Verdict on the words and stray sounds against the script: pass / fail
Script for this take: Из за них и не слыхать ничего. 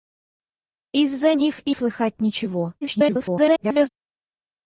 fail